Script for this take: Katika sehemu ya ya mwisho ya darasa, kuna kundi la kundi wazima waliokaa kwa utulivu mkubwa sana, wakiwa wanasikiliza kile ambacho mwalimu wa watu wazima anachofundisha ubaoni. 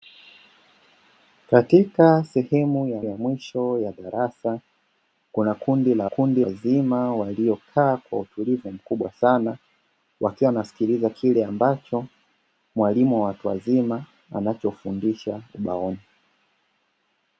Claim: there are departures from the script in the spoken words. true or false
false